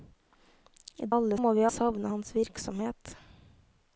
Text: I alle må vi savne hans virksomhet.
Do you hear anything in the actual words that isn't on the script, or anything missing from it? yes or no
no